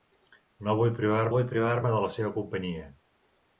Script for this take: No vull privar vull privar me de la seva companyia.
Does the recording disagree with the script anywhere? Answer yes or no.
no